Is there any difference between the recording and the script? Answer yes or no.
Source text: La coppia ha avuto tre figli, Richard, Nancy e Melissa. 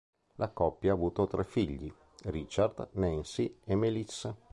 no